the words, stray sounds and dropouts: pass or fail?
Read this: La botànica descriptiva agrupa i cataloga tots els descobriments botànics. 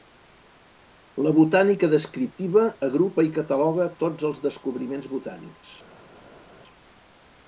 pass